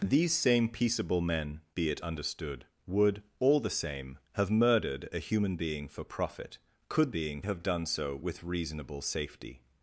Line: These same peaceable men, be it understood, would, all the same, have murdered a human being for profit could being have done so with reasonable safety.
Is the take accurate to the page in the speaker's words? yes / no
yes